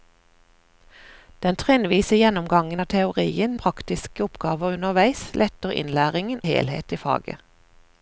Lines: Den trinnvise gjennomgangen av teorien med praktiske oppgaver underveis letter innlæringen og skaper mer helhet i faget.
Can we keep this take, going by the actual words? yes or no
no